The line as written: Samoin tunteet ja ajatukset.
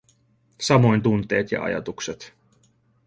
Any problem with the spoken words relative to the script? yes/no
no